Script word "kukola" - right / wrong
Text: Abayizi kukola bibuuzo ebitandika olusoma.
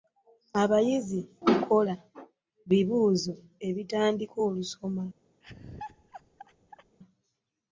right